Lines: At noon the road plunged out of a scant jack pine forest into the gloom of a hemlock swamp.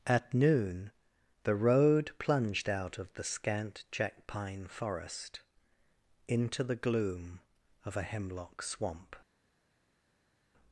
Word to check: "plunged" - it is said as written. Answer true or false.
true